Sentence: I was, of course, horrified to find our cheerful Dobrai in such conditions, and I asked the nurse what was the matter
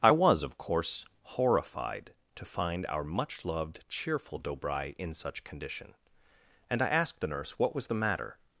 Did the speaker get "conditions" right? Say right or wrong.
wrong